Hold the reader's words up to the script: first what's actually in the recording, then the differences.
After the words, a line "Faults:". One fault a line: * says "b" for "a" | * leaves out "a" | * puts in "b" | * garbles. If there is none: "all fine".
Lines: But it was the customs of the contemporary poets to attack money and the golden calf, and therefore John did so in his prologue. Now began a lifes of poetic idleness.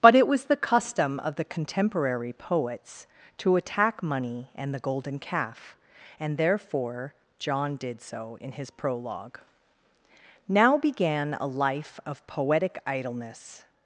But it was the custom of the contemporary poets to attack money and the golden calf, and therefore John did so in his prologue. Now began a life of poetic idleness.
Faults:
* says "custom" for "customs"
* says "life" for "lifes"